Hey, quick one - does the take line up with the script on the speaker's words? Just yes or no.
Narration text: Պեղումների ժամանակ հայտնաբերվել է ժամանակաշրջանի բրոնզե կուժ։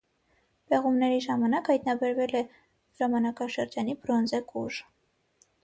yes